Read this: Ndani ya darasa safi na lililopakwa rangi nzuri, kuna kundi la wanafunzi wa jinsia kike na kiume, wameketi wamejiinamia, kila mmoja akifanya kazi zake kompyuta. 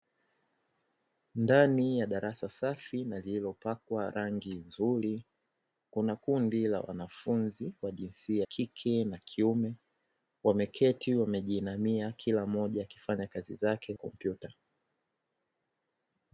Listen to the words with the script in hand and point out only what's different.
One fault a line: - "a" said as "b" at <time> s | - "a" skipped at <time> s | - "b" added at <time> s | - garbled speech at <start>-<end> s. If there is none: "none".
none